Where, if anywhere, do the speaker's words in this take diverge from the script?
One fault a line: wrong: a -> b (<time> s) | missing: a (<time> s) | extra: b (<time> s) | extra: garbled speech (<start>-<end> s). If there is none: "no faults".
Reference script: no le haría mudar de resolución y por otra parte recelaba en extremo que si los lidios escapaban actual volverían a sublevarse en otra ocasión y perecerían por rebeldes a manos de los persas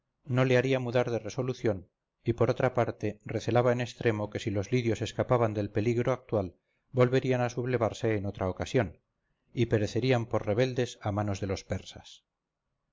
extra: del peligro (5.5 s)